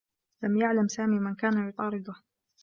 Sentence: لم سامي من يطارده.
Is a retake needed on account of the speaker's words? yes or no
yes